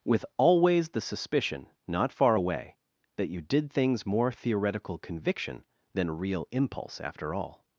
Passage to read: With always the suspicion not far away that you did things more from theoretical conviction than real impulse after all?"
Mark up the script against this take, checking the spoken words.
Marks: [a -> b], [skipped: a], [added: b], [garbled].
With always the suspicion not far away that you did things more [skipped: from] theoretical conviction than real impulse after all?"